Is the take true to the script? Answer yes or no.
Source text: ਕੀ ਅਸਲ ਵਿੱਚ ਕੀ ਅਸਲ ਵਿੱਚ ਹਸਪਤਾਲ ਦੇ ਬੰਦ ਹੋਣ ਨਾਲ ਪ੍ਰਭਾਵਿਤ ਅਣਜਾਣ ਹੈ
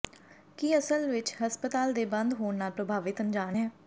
no